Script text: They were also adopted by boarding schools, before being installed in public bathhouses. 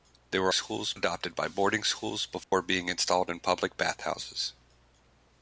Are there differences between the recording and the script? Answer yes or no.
yes